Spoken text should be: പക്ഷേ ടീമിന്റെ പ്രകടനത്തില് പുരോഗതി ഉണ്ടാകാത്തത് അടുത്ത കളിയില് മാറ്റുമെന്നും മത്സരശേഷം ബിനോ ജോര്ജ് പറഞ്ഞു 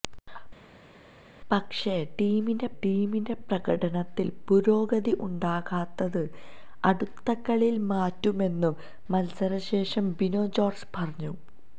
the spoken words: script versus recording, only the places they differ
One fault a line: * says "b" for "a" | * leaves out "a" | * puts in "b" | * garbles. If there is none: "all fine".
* puts in "ടീമിന്റെ"